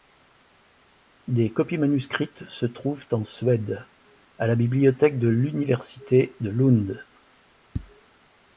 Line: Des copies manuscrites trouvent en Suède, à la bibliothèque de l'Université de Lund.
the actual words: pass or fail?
fail